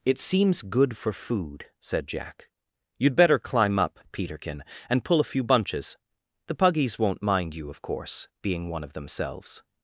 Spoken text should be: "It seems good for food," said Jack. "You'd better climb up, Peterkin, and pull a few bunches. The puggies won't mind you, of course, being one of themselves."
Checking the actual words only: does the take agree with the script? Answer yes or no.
yes